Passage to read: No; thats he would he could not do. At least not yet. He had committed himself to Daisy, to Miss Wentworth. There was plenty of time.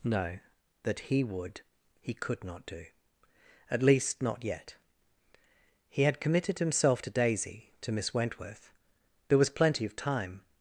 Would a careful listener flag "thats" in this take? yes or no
yes